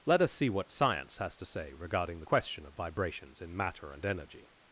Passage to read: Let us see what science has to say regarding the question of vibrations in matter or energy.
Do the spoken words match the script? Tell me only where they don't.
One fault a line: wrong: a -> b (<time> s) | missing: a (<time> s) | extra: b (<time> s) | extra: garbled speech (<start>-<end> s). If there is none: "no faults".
wrong: or -> and (3.9 s)